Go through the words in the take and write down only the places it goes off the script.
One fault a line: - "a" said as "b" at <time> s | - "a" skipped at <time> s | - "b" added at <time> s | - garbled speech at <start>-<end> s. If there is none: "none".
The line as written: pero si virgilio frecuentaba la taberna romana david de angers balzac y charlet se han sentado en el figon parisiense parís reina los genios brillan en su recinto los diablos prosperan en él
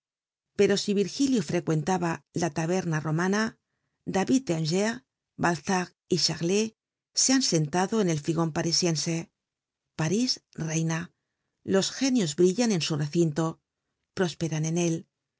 - "los diablos" skipped at 13.4 s